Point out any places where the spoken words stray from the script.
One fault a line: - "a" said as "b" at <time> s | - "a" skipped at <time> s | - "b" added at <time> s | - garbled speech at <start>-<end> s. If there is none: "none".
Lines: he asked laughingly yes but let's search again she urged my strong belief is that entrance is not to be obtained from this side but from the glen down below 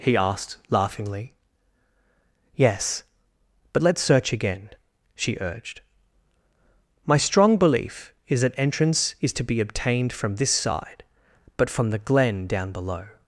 - "not" skipped at 9.3 s